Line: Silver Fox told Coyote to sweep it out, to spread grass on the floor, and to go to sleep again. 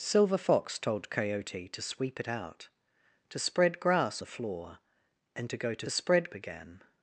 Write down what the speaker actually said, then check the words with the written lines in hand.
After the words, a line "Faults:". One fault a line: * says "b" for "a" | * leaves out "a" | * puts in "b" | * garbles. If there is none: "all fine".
Silver Fox told Coyote to sweep it out, to spread grass the floor, and to go to spread again.
Faults:
* leaves out "on"
* says "spread" for "sleep"